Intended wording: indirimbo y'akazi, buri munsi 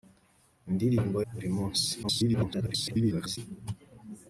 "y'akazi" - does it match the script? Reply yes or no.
no